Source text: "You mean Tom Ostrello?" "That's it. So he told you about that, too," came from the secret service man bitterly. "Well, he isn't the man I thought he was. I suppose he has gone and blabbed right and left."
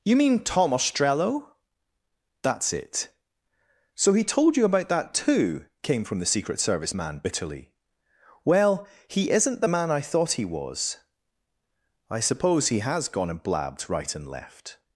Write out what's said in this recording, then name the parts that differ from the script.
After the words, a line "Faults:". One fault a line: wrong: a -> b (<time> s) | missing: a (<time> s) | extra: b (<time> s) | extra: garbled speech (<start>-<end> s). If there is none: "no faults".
"You mean Tom Ostrello?" "That's it. So he told you about that, too," came from the secret service man bitterly. "Well, he isn't the man I thought he was. I suppose he has gone and blabbed right and left."
Faults:
no faults